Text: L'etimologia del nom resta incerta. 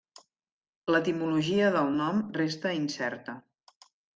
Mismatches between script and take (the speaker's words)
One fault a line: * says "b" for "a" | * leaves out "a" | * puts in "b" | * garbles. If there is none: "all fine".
all fine